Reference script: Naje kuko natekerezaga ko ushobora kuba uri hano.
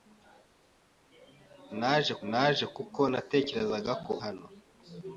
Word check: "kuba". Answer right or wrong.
wrong